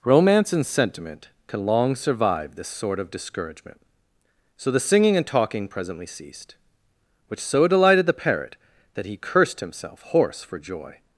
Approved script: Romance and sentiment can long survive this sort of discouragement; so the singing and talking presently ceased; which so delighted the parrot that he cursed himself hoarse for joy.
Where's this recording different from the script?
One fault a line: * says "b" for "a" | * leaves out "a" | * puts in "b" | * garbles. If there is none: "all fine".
all fine